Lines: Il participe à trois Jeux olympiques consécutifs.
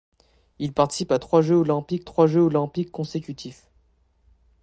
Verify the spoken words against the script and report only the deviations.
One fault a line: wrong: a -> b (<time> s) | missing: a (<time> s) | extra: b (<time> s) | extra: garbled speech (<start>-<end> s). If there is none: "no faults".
extra: trois Jeux olympiques (2.0 s)